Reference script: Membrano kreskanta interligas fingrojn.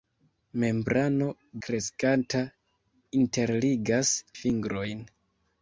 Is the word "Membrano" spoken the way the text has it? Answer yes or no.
yes